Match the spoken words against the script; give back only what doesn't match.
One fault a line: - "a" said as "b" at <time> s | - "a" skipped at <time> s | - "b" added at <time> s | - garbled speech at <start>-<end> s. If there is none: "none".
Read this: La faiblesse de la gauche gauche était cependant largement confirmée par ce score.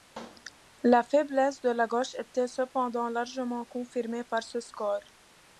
- "gauche" skipped at 2.1 s